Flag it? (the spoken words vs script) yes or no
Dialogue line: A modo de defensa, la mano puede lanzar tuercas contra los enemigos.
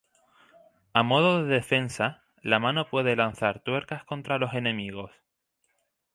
no